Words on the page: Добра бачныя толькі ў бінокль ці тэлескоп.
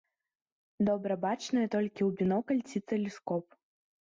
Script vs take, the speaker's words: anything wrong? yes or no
no